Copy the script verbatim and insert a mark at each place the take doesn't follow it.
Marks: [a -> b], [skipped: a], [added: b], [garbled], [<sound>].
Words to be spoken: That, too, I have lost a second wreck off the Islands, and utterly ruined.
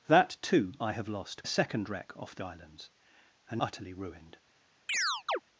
That, too, I have lost a second wreck off the Islands, and utterly ruined. [chirp]